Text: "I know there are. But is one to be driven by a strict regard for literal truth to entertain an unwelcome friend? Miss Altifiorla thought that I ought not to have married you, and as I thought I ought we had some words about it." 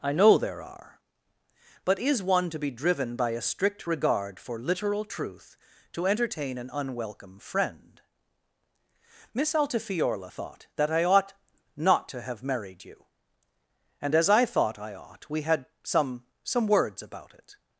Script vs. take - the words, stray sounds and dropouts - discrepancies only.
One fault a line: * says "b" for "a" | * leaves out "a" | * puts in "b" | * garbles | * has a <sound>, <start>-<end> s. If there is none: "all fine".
* puts in "some"